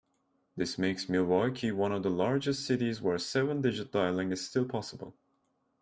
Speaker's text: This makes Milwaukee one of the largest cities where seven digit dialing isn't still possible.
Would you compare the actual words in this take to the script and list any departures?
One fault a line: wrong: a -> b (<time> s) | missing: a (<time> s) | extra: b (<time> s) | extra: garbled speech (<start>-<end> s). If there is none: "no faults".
wrong: isn't -> is (4.3 s)